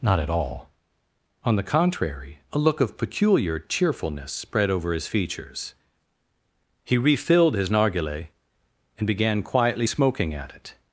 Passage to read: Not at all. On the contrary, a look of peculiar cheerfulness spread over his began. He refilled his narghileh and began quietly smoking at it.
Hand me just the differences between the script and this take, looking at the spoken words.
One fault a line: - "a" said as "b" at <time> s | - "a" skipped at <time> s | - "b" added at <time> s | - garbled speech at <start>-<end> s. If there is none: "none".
- "began" said as "features" at 5.1 s